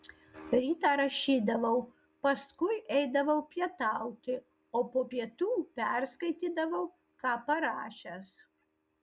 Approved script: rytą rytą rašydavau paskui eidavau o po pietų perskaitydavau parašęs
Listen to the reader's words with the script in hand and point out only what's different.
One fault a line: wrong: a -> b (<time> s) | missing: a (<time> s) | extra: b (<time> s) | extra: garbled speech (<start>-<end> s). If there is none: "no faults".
missing: rytą (0.9 s)
extra: pietauti (3.5 s)
extra: ką (7.2 s)